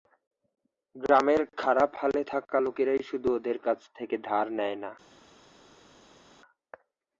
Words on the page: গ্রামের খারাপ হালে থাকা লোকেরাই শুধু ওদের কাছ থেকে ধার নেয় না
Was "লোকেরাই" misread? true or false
false